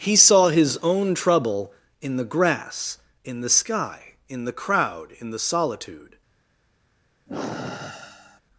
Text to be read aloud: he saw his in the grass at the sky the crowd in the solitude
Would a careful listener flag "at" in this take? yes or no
yes